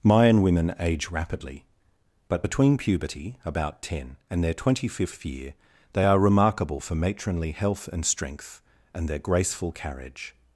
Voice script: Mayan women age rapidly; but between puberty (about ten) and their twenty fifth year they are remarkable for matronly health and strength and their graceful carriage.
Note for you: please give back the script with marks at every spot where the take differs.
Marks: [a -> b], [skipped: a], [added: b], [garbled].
Mayan women age rapidly; but between puberty (about ten) and their twenty fifth year they are remarkable for matronly health and strength and their graceful carriage.